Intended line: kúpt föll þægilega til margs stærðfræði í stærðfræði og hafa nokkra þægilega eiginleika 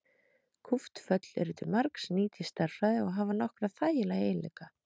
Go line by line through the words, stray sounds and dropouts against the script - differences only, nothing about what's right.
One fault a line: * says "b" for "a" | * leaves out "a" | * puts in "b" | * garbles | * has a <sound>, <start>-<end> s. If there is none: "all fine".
* says "eru" for "þægilega"
* says "nýt" for "stærðfræði"